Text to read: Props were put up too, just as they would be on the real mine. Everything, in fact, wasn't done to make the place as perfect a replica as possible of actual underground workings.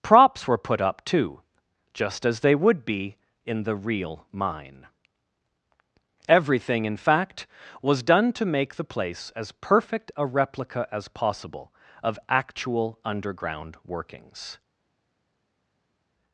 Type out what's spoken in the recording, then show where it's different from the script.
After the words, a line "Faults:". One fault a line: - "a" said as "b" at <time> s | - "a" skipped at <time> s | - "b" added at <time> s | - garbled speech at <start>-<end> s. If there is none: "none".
Props were put up too, just as they would be in the real mine. Everything, in fact, was done to make the place as perfect a replica as possible of actual underground workings.
Faults:
- "on" said as "in" at 3.5 s
- "wasn't" said as "was" at 7.8 s